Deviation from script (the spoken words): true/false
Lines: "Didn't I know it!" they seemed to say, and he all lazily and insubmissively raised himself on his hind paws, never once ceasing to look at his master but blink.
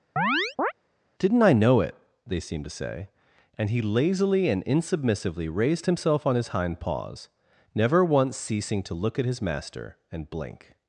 true